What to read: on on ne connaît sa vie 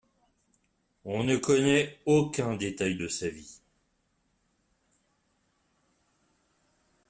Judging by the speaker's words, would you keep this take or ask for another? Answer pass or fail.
fail